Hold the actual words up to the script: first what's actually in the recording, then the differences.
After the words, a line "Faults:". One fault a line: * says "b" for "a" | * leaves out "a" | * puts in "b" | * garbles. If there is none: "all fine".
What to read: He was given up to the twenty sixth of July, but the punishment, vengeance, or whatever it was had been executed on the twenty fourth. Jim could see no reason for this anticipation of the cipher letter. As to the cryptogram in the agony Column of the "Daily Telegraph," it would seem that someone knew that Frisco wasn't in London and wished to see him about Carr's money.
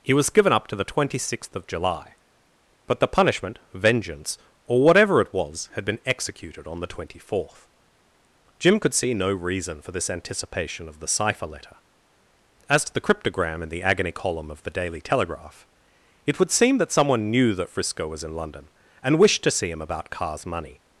He was given up to the twenty sixth of July, but the punishment, vengeance, or whatever it was had been executed on the twenty fourth. Jim could see no reason for this anticipation of the cipher letter. As to the cryptogram in the agony Column of the "Daily Telegraph," it would seem that someone knew that Frisco was in London and wished to see him about Carr's money.
Faults:
* says "was" for "wasn't"